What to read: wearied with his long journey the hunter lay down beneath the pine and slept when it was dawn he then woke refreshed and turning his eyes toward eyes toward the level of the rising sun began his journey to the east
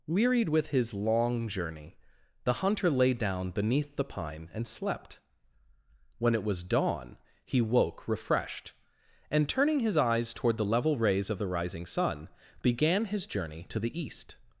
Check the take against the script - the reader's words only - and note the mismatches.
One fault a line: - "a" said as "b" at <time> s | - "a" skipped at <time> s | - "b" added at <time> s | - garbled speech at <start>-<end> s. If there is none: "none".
- "then" skipped at 7.6 s
- "eyes toward" skipped at 10.6 s
- "rays" added at 11.0 s